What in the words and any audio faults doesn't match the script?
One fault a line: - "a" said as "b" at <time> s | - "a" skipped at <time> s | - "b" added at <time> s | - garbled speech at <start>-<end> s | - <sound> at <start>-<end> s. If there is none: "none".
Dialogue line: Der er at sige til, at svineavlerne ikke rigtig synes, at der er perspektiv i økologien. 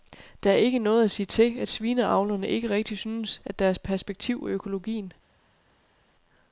- "ikke noget" added at 0.6 s